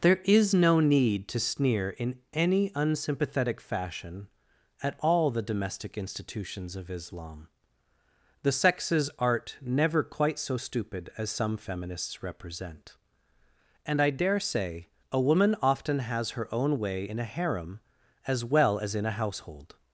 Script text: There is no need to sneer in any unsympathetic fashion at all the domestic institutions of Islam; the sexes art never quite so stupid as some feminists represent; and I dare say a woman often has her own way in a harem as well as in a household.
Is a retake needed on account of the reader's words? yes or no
no